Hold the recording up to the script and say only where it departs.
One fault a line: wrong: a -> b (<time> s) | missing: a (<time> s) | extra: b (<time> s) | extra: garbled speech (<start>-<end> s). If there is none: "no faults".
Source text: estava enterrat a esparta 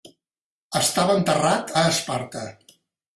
no faults